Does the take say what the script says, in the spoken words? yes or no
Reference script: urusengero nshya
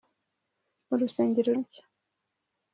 yes